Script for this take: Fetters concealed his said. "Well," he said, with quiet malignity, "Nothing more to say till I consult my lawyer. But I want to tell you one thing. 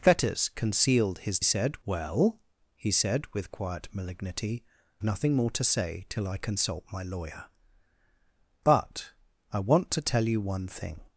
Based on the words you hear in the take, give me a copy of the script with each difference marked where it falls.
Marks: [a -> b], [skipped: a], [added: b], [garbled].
Fetters concealed his said. "Well," he said, with quiet malignity, "Nothing more to say till I consult my lawyer. But I want to tell you one thing.